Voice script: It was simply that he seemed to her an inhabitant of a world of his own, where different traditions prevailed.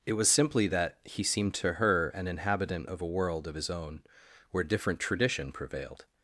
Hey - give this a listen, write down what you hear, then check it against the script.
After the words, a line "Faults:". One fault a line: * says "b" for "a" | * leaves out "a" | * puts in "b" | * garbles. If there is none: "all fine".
It was simply that he seemed to her an inhabitant of a world of his own, where different tradition prevailed.
Faults:
* says "tradition" for "traditions"